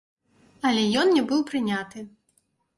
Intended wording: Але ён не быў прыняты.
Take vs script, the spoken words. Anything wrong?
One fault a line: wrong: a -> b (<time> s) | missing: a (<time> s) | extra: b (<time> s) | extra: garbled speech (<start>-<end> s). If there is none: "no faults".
no faults